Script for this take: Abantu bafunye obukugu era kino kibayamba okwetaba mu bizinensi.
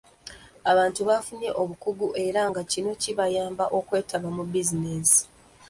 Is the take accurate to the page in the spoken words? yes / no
no